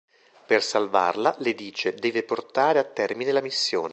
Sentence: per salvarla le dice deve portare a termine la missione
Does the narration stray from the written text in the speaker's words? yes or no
no